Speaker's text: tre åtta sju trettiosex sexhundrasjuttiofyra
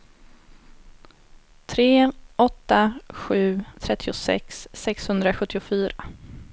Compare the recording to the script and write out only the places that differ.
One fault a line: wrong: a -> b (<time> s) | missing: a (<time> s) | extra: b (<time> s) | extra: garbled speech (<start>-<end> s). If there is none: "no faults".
no faults